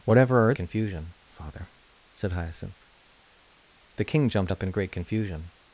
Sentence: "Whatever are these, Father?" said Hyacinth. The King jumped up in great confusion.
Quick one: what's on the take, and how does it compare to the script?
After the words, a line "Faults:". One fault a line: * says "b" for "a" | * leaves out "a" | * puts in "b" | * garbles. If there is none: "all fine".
"Whatever are confusion, Father?" said Hyacinth. The King jumped up in great confusion.
Faults:
* says "confusion" for "these"